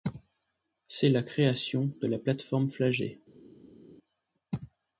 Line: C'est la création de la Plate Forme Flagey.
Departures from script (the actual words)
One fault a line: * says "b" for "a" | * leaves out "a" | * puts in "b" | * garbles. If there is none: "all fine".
all fine